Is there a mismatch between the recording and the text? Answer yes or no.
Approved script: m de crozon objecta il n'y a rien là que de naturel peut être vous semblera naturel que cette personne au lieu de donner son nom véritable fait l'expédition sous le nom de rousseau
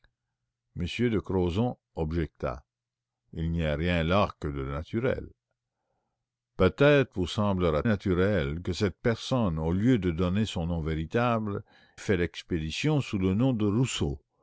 no